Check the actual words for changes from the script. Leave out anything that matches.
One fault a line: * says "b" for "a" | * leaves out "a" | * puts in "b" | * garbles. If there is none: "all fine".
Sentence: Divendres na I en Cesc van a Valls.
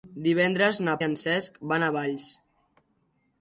all fine